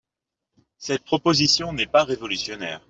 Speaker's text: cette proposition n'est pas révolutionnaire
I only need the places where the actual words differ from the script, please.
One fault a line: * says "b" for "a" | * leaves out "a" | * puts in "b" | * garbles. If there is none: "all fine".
all fine